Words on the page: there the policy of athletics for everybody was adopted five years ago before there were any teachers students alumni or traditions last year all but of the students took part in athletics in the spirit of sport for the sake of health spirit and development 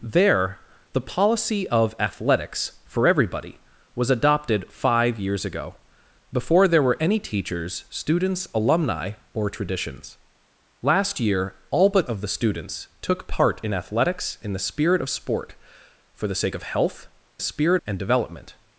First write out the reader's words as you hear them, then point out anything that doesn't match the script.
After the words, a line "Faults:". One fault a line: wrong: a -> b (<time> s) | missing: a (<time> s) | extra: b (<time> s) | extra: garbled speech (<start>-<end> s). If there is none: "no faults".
there the policy of athletics for everybody was adopted five years ago before there were any teachers students alumni or traditions last year all but of the students took part in athletics in the spirit of sport for the sake of health spirit and development
Faults:
no faults